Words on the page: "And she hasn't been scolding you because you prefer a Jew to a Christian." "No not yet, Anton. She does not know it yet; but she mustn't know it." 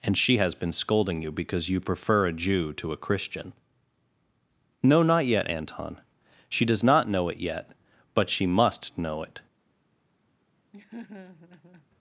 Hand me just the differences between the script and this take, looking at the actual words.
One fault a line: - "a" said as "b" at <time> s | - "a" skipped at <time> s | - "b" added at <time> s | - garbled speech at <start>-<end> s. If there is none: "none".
- "hasn't" said as "has" at 0.4 s
- "mustn't" said as "must" at 8.5 s